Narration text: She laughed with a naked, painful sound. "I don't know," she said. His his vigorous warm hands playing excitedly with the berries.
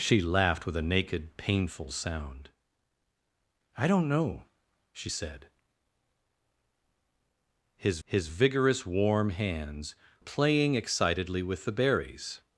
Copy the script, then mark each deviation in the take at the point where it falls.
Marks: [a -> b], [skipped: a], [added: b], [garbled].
She laughed with a naked, painful sound. "I don't know," she said. His his vigorous warm hands playing excitedly with the berries.